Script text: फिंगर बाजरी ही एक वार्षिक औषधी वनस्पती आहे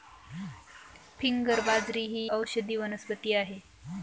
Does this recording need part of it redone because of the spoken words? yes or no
yes